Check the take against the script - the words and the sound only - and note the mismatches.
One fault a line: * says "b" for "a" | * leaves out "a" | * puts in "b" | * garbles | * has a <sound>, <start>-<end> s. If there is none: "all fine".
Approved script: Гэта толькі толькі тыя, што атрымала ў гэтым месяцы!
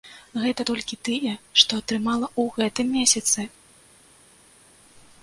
* leaves out "толькі"